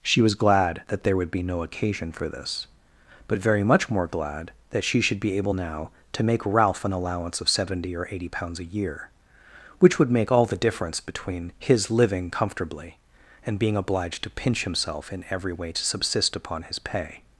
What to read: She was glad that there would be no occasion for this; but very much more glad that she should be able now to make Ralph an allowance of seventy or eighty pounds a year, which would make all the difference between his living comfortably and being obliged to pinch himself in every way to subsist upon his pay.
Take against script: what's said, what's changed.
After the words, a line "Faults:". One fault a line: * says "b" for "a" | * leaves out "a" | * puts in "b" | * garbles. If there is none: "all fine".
She was glad that there would be no occasion for this; but very much more glad that she should be able now to make Ralph an allowance of seventy or eighty pounds a year, which would make all the difference between his living comfortably and being obliged to pinch himself in every way to subsist upon his pay.
Faults:
all fine